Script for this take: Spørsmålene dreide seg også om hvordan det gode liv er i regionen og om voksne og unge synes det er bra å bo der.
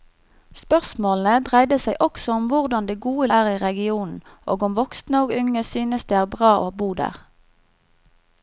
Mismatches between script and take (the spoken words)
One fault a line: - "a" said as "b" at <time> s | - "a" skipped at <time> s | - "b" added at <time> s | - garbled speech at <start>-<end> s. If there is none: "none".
- "liv" skipped at 3.3 s